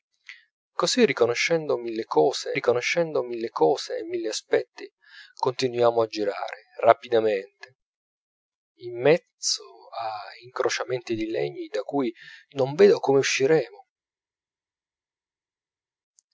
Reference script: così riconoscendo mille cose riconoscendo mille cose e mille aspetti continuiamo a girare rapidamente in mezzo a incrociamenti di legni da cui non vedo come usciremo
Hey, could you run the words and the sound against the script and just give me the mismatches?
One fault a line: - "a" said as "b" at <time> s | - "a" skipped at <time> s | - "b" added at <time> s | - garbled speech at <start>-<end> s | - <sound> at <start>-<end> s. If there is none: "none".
none